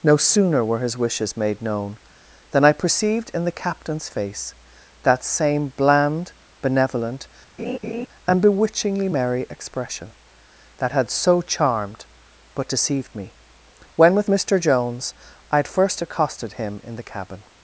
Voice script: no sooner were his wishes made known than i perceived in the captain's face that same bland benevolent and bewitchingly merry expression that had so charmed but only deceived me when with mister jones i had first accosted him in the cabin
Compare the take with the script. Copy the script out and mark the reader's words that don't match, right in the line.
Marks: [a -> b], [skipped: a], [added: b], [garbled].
no sooner were his wishes made known than i perceived in the captain's face that same bland benevolent and bewitchingly merry expression that had so charmed but [skipped: only] deceived me when with mister jones i had first accosted him in the cabin